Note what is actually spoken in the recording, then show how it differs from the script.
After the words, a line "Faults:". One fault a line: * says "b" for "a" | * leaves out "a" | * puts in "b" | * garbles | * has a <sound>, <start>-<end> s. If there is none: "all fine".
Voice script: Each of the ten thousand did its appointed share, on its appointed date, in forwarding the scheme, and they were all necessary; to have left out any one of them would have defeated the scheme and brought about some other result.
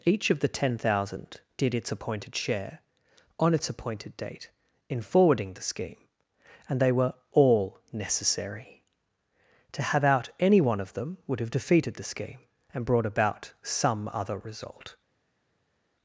Each of the ten thousand did its appointed share, on its appointed date, in forwarding the scheme, and they were all necessary; to have out any one of them would have defeated the scheme and brought about some other result.
Faults:
* leaves out "left"